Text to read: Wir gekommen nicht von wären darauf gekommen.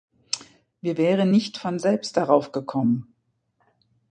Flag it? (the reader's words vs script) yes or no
yes